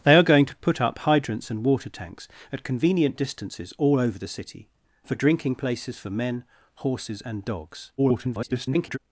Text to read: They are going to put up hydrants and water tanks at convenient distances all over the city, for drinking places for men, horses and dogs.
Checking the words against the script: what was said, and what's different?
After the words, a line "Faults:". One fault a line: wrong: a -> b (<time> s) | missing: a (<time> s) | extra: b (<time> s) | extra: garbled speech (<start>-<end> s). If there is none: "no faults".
They are going to put up hydrants and water tanks at convenient distances all over the city, for drinking places for men, horses and dogs. [garbled]
Faults:
extra: garbled speech (8.0-9.0 s)